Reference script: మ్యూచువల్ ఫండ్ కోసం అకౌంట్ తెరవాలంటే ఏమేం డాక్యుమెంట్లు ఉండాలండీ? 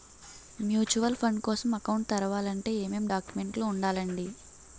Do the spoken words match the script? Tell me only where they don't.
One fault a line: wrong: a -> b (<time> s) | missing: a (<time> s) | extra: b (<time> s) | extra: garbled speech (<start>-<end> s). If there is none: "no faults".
no faults